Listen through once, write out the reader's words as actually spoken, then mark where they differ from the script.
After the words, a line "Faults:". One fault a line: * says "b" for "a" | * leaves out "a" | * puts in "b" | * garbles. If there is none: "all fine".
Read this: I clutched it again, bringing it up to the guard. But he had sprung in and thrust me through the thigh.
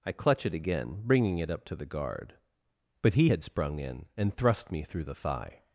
I clutch it again, bringing it up to the guard. But he had sprung in and thrust me through the thigh.
Faults:
* says "clutch" for "clutched"